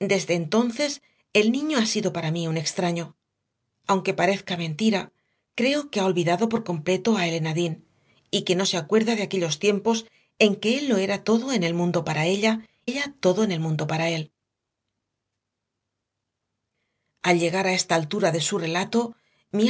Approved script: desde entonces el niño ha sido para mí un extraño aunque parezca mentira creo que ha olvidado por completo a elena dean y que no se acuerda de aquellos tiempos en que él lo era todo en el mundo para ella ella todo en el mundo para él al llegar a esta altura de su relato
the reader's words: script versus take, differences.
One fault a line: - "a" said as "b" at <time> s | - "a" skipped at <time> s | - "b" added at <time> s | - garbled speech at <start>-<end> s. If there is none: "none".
none